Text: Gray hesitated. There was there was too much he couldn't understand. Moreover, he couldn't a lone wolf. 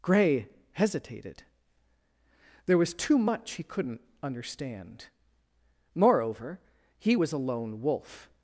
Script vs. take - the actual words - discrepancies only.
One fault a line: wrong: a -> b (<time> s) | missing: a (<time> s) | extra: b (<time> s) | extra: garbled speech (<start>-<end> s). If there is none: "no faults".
missing: there was (2.9 s)
wrong: couldn't -> was (7.1 s)